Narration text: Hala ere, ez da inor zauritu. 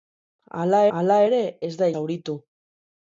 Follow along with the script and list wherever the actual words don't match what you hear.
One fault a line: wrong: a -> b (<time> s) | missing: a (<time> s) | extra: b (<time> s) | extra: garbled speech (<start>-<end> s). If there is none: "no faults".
extra: hala (1.0 s)
missing: inor (1.9 s)